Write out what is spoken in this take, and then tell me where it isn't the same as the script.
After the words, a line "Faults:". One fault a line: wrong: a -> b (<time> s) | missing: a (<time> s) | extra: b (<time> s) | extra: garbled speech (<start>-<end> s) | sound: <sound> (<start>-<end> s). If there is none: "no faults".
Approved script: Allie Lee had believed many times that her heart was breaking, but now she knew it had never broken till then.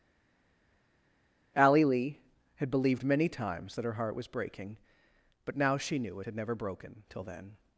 Allie Lee had believed many times that her heart was breaking, but now she knew it had never broken till then.
Faults:
no faults